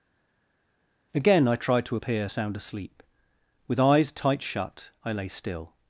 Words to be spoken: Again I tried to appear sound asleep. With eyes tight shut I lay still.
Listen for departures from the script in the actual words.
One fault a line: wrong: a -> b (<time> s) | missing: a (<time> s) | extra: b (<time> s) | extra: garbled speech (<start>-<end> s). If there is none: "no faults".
no faults